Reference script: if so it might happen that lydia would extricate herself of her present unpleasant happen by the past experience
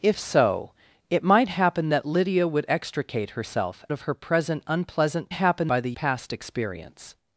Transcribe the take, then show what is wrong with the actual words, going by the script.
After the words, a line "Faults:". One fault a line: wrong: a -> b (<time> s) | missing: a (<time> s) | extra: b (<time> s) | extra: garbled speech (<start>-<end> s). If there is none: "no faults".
if so it might happen that lydia would extricate herself of her present unpleasant happen by the past experience
Faults:
no faults